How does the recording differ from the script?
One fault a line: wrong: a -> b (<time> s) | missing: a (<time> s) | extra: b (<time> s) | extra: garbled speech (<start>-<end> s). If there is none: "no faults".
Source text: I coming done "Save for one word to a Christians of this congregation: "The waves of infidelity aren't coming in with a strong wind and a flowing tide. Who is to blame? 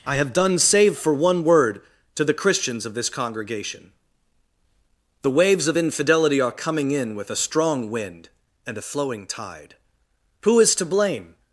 wrong: coming -> have (0.1 s)
wrong: a -> the (2.2 s)
wrong: aren't -> are (6.4 s)